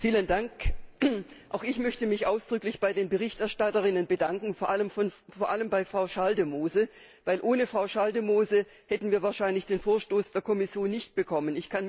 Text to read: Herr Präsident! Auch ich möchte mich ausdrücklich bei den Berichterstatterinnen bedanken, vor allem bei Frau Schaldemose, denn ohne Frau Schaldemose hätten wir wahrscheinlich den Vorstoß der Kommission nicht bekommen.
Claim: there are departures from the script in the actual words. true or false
false